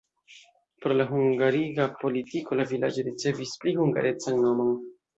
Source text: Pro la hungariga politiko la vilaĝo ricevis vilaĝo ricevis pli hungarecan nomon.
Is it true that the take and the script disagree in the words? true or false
true